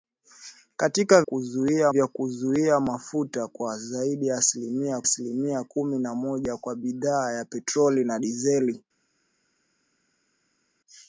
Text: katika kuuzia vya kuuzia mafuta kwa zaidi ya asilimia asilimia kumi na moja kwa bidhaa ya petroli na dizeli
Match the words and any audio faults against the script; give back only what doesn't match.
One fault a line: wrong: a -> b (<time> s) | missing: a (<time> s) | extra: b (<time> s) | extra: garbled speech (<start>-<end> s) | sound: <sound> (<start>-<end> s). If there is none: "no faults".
no faults